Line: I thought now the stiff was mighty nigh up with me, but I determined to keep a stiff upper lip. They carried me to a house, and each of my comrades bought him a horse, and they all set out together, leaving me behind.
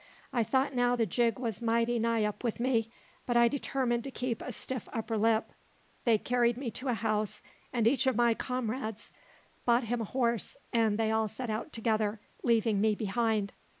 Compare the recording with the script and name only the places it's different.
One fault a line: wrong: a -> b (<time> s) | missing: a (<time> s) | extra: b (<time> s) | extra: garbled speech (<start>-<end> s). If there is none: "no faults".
wrong: stiff -> jig (1.0 s)